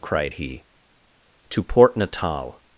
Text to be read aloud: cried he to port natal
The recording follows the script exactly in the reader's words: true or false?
true